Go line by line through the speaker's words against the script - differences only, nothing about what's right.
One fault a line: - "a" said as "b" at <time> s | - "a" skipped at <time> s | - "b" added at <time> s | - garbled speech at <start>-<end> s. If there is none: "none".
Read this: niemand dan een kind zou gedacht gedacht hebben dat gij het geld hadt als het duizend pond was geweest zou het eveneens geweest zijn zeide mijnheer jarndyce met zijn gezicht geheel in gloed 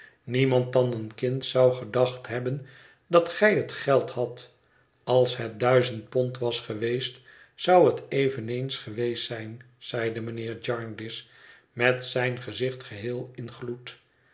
- "gedacht" skipped at 2.3 s